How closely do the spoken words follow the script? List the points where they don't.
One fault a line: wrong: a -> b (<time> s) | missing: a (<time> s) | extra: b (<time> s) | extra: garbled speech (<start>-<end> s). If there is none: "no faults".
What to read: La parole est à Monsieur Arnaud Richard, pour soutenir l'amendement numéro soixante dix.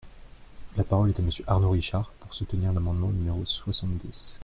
no faults